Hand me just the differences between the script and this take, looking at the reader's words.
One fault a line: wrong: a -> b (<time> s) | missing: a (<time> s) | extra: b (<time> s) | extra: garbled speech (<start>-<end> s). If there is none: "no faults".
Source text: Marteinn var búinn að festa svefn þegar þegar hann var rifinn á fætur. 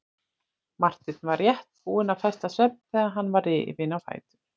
extra: rétt (1.4 s)
missing: þegar (3.1 s)